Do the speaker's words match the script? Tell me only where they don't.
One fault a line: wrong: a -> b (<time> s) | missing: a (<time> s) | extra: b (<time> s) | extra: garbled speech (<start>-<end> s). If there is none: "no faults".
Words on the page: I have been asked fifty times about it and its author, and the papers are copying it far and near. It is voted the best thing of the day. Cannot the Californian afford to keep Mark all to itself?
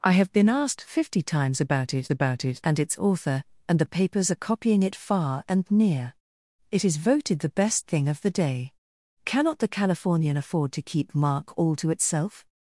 extra: about it (2.1 s)